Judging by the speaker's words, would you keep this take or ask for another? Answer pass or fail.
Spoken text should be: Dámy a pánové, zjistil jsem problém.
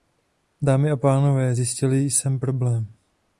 pass